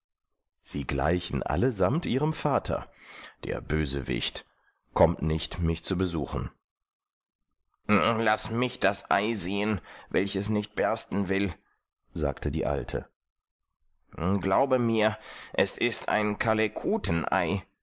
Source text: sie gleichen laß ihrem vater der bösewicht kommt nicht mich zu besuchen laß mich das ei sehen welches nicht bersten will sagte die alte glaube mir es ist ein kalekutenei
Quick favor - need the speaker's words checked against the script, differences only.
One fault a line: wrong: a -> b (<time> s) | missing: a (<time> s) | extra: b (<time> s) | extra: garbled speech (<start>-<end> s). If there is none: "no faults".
wrong: laß -> allesamt (1.4 s)